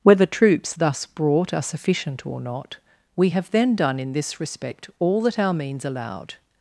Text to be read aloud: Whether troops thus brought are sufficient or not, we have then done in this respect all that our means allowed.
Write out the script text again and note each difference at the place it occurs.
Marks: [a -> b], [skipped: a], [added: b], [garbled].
Whether troops thus brought are sufficient or not, we have then done in this respect all that our means allowed.